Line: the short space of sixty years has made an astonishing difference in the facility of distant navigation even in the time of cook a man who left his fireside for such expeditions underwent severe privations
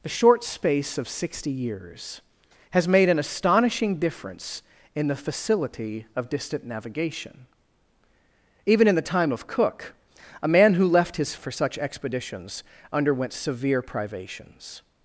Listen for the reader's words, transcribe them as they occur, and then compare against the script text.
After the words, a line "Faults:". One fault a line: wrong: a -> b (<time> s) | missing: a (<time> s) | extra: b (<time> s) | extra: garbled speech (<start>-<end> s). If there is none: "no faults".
the short space of sixty years has made an astonishing difference in the facility of distant navigation even in the time of cook a man who left his for such expeditions underwent severe privations
Faults:
missing: fireside (11.4 s)